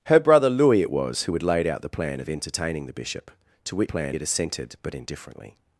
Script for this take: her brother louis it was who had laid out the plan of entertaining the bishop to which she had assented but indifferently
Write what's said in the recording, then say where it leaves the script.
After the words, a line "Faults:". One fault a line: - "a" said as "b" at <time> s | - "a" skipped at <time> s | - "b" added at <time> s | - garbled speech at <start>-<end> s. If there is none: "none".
her brother louis it was who had laid out the plan of entertaining the bishop to which plan had assented but indifferently
Faults:
- "she" said as "plan" at 3.9 s